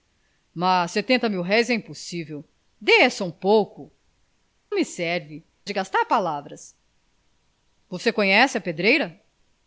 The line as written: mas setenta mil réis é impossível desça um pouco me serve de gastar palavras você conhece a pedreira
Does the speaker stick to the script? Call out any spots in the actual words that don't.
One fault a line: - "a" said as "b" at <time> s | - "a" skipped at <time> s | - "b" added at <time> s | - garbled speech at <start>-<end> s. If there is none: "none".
none